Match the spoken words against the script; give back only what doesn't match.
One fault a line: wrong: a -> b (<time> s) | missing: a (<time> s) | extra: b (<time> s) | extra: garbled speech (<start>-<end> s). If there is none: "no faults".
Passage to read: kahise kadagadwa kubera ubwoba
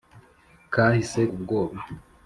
missing: kadagadwa kubera (1.2 s)